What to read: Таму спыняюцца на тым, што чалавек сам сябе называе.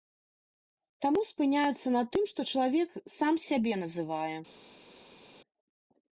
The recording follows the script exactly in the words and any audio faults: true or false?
true